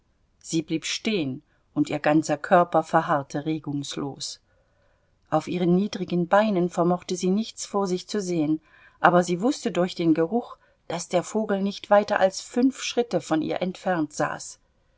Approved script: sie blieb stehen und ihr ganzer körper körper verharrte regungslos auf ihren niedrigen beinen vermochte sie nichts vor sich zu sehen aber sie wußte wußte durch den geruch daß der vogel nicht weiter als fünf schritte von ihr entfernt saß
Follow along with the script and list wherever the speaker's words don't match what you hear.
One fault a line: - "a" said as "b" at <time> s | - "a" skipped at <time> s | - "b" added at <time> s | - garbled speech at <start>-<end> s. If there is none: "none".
- "körper" skipped at 2.8 s
- "wußte" skipped at 9.7 s